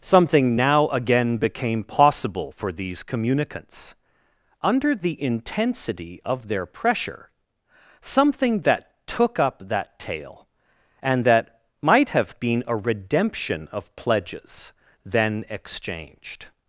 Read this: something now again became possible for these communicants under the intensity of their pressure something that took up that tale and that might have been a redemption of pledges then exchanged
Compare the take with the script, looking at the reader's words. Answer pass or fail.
pass